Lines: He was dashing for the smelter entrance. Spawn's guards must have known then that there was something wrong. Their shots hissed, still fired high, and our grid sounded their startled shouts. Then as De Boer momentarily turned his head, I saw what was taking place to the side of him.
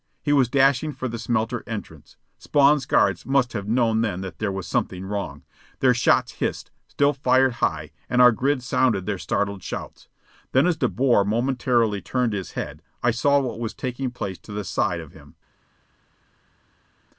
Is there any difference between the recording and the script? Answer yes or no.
no